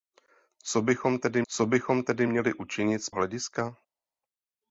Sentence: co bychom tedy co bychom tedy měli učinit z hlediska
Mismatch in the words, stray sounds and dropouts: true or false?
false